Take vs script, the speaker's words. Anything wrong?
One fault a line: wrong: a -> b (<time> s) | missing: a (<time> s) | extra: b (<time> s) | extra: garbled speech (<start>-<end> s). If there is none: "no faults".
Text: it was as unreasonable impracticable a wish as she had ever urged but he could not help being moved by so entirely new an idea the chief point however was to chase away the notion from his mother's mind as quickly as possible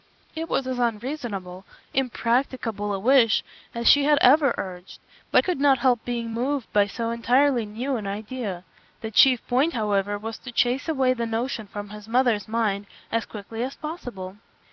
missing: he (5.4 s)